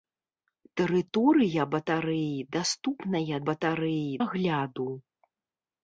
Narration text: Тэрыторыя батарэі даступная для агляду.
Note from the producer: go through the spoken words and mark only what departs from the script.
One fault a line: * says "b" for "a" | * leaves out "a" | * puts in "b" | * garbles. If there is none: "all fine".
* says "батарэі" for "для"